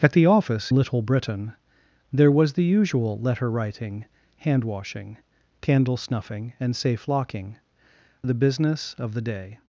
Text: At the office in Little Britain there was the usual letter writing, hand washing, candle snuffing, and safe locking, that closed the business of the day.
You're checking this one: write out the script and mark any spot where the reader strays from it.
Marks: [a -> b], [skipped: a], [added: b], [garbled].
At the office [skipped: in] Little Britain there was the usual letter writing, hand washing, candle snuffing, and safe locking, [skipped: that closed] the business of the day.